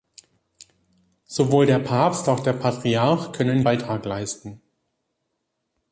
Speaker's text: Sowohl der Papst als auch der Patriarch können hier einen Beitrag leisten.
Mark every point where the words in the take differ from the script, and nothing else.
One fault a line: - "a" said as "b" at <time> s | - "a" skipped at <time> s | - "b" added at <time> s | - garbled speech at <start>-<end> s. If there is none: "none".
- "als" skipped at 2.3 s
- "hier einen" skipped at 3.6 s